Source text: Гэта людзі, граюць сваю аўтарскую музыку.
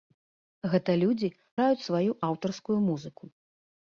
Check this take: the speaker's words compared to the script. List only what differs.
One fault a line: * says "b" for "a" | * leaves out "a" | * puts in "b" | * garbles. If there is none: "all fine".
all fine